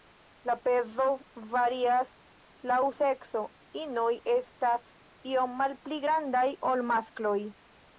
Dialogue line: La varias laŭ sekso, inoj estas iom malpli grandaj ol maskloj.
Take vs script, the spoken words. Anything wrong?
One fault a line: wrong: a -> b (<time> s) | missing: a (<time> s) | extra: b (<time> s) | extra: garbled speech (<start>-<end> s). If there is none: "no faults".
extra: pezo (0.7 s)